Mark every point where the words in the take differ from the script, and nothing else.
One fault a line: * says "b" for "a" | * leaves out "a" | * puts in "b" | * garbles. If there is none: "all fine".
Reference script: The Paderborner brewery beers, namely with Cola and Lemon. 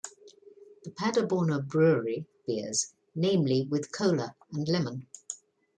all fine